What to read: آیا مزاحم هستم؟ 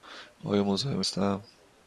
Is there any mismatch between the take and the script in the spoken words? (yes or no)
no